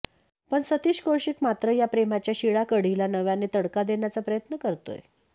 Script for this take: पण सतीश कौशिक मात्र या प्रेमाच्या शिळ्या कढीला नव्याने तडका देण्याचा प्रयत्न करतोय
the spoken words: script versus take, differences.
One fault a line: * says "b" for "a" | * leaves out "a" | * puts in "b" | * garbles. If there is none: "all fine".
all fine